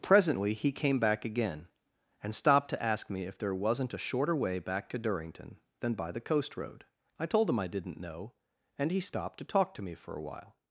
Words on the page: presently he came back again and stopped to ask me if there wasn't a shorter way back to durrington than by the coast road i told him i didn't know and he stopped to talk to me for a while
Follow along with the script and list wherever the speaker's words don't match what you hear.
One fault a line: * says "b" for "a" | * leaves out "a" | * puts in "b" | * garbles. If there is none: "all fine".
all fine